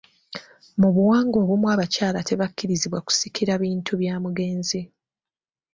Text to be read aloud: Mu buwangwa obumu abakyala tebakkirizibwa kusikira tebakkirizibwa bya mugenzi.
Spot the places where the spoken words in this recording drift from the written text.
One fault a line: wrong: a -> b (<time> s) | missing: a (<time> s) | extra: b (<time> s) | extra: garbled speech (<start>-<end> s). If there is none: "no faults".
wrong: tebakkirizibwa -> bintu (3.6 s)